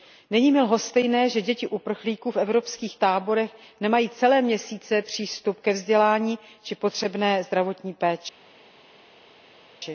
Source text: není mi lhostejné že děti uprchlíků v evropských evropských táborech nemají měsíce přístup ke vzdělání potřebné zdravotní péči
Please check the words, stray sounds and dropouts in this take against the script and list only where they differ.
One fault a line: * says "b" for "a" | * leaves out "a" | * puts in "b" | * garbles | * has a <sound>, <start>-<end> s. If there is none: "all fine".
* leaves out "evropských"
* puts in "celé"
* puts in "či"